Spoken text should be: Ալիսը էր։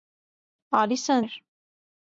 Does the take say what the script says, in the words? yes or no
yes